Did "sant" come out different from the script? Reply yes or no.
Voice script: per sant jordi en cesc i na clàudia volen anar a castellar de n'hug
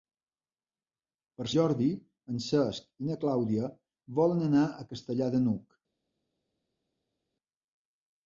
yes